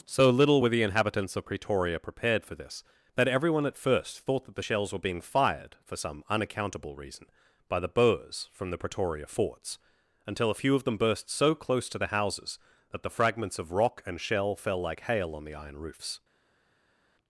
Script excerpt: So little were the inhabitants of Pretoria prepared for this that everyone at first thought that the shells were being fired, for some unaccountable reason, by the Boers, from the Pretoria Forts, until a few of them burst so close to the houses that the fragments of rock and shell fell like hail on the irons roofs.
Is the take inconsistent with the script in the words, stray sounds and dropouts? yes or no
yes